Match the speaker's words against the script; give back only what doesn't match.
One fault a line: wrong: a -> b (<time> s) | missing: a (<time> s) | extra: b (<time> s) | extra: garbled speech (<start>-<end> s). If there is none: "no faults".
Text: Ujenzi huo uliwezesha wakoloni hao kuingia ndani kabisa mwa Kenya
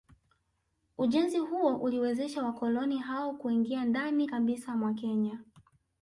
no faults